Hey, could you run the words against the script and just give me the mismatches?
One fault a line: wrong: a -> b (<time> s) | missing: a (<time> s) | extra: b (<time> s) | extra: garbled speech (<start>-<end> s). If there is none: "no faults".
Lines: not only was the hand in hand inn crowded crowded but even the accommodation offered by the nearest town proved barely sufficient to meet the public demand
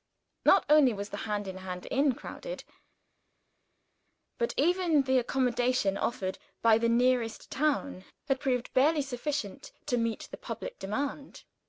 missing: crowded (2.6 s)
extra: had (8.3 s)